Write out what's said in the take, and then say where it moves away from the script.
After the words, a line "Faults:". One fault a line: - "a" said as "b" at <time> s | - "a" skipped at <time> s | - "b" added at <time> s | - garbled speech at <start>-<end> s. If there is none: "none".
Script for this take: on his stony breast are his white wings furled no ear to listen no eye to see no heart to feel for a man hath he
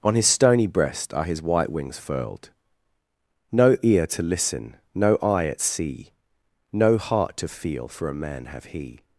on his stony breast are his white wings furled no ear to listen no eye at see no heart to feel for a man have he
Faults:
- "to" said as "at" at 5.5 s
- "hath" said as "have" at 8.5 s